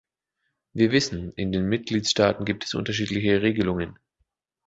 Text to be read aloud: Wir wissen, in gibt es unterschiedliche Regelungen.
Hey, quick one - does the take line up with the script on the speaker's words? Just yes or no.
no